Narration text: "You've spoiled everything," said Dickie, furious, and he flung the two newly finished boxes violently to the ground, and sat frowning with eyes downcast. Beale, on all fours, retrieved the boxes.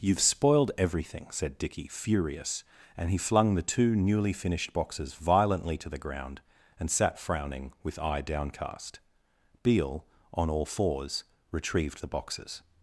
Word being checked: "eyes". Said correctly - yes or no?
no